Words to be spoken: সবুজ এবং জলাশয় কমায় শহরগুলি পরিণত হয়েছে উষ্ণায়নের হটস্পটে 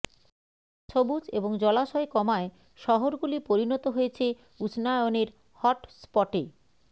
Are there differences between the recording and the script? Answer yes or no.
no